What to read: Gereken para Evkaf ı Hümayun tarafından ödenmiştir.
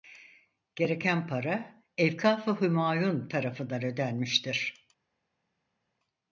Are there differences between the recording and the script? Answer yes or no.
no